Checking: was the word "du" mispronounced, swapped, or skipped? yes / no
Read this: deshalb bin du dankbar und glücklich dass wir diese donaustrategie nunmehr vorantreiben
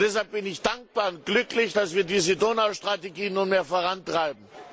yes